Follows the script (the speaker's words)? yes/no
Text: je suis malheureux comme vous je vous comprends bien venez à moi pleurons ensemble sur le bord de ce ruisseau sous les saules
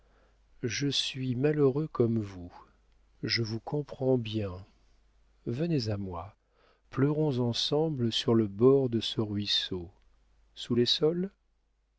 yes